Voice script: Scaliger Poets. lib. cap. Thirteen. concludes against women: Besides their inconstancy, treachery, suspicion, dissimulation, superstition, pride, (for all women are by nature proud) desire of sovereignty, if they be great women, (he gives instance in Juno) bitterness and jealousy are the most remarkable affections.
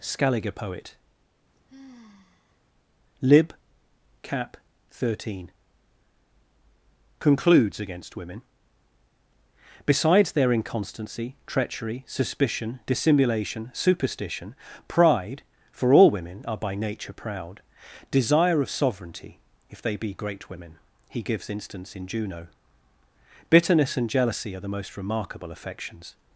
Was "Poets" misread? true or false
true